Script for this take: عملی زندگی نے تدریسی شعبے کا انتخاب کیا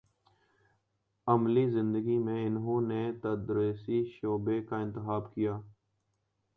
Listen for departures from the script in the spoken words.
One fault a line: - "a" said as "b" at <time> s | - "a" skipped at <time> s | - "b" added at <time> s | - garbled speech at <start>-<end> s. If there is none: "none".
- "میں انہوں" added at 2.2 s